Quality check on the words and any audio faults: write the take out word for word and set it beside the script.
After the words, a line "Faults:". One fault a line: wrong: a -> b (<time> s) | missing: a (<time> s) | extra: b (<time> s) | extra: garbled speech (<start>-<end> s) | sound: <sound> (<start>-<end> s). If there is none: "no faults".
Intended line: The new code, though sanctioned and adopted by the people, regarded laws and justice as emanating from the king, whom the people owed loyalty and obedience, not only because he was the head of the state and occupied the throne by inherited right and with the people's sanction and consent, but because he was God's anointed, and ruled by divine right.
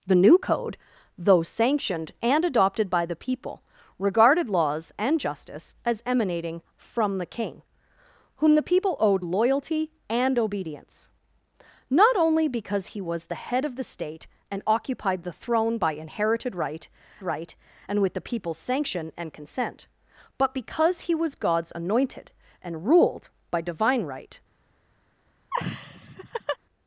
The new code, though sanctioned and adopted by the people, regarded laws and justice as emanating from the king, whom the people owed loyalty and obedience, not only because he was the head of the state and occupied the throne by inherited right right and with the people's sanction and consent, but because he was God's anointed, and ruled by divine right.
Faults:
extra: right (17.2 s)
sound: laugh (25.5-26.6 s)